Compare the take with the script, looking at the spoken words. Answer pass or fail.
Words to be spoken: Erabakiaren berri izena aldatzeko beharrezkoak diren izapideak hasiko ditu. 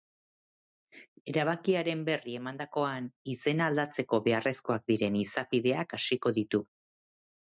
fail